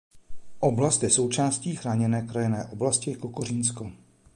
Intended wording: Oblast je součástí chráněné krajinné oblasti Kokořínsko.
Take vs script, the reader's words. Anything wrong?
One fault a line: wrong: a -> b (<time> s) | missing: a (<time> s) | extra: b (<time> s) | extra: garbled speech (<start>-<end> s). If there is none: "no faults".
no faults